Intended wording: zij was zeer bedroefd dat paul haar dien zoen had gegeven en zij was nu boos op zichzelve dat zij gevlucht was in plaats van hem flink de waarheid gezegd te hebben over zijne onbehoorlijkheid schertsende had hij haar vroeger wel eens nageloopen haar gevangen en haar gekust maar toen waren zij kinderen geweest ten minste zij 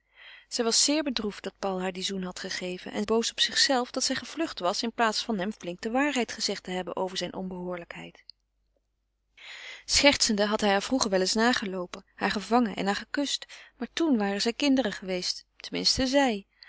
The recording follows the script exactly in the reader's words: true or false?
false